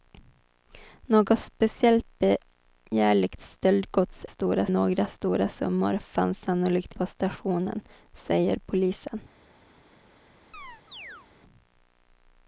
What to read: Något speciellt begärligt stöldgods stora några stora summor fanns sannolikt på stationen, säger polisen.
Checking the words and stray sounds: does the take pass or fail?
fail